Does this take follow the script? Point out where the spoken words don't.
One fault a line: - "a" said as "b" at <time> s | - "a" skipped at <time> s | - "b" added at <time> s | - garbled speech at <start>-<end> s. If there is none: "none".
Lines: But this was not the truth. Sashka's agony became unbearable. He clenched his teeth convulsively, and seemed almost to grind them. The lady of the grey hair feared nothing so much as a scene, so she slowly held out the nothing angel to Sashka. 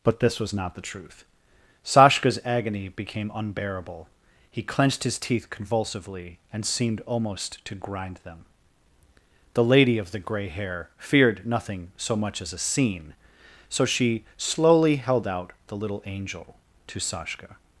- "nothing" said as "little" at 15.8 s